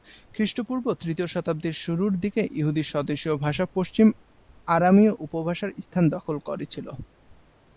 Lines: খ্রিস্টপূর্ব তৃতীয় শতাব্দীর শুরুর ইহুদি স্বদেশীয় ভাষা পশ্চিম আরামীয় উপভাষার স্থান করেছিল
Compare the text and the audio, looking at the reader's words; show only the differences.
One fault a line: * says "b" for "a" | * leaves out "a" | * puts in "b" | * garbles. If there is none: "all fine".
* puts in "দিকে"
* puts in "দখল"